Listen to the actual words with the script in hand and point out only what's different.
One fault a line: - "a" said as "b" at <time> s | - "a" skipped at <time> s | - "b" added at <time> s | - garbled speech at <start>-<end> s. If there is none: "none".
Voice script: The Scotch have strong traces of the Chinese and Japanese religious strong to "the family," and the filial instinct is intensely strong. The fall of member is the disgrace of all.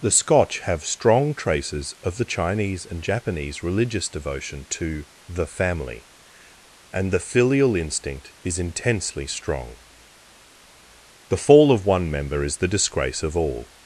- "strong" said as "devotion" at 4.1 s
- "one" added at 11.8 s